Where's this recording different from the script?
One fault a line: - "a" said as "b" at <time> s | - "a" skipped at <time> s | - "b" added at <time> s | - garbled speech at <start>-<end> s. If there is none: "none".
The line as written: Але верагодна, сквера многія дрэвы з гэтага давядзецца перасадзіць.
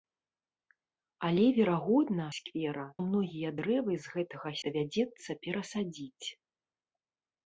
none